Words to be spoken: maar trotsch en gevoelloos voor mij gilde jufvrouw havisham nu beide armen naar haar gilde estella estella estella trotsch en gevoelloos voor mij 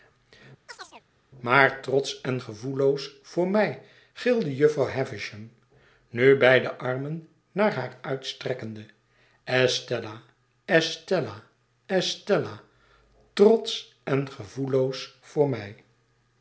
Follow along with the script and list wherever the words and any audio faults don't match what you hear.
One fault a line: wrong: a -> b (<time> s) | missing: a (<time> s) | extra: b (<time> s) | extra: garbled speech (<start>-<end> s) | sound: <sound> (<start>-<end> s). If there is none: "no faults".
sound: chirp (0.7-1.0 s)
wrong: gilde -> uitstrekkende (8.0 s)